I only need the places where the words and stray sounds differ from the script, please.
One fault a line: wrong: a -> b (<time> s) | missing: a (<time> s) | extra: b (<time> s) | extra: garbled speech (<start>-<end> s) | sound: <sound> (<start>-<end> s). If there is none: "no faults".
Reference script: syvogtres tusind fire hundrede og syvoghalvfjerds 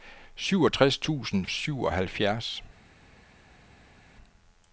missing: fire hundrede og (1.4 s)